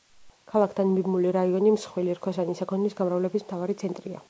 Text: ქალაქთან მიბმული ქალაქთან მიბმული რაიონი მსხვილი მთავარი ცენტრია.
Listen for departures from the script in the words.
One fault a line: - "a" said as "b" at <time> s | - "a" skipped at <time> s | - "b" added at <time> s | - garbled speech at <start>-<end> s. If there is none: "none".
- "ქალაქთან მიბმული რაიონი მსხვილი" said as "რაიონი მსხვილი რქოსანი საქონლის გამრავლების" at 1.4 s